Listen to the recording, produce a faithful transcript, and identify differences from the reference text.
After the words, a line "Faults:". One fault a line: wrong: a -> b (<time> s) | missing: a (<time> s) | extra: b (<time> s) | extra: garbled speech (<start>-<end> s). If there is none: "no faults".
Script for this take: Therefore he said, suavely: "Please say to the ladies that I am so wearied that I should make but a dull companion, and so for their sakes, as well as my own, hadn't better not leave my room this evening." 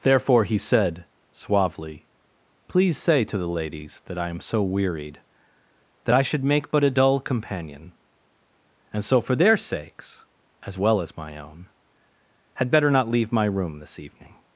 Therefore he said, suavely: "Please say to the ladies that I am so wearied that I should make but a dull companion, and so for their sakes, as well as my own, had better not leave my room this evening."
Faults:
wrong: hadn't -> had (12.5 s)